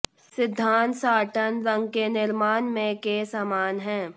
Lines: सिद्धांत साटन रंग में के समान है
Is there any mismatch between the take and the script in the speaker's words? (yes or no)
yes